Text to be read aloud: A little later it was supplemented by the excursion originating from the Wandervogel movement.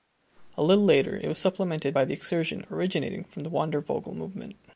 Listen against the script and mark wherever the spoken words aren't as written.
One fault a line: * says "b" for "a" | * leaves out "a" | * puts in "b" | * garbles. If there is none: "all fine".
all fine